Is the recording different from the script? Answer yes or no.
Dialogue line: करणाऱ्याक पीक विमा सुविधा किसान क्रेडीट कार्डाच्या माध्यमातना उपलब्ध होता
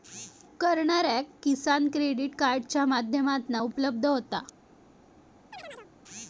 yes